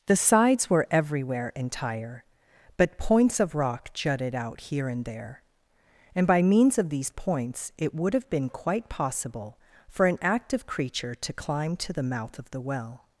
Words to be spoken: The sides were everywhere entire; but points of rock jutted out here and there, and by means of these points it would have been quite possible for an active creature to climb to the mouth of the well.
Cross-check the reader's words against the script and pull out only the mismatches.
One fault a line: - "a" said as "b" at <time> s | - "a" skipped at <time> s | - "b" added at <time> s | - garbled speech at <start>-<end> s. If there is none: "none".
none